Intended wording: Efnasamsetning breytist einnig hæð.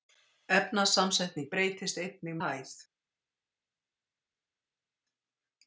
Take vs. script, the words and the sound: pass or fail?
pass